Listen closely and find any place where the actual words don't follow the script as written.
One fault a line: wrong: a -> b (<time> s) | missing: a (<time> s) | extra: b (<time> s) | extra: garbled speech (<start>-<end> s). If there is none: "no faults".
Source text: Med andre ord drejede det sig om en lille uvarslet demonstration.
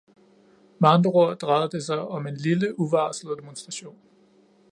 no faults